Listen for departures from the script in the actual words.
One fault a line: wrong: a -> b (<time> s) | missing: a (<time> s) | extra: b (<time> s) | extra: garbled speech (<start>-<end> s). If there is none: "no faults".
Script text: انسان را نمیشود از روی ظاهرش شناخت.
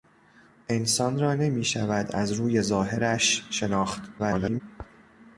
extra: garbled speech (4.2-4.6 s)